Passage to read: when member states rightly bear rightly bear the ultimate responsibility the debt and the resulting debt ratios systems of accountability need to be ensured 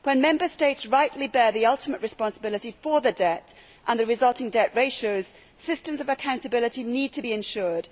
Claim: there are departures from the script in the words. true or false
true